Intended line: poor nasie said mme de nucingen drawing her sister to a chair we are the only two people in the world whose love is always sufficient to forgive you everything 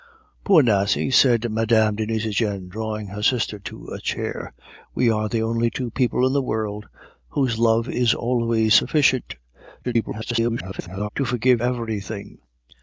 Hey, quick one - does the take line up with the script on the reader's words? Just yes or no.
no